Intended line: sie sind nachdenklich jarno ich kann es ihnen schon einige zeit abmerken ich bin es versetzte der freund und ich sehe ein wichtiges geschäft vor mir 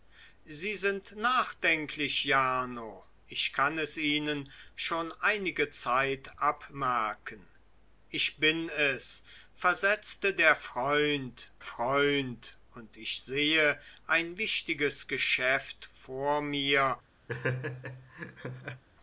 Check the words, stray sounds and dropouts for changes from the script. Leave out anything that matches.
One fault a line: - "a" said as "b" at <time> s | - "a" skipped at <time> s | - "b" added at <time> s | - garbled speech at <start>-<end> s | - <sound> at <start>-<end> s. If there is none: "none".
- "freund" added at 11.6 s
- laugh at 17.3-18.8 s